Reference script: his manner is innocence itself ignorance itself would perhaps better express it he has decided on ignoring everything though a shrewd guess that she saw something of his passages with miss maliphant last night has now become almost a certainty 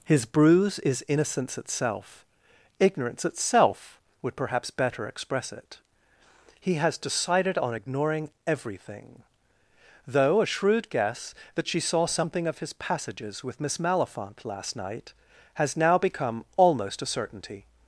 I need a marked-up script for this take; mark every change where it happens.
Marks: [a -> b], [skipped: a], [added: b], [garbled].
his [manner -> bruise] is innocence itself ignorance itself would perhaps better express it he has decided on ignoring everything though a shrewd guess that she saw something of his passages with miss maliphant last night has now become almost a certainty